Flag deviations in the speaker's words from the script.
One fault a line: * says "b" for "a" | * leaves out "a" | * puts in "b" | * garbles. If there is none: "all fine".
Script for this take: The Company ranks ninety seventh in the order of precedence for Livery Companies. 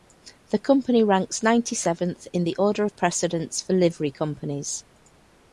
all fine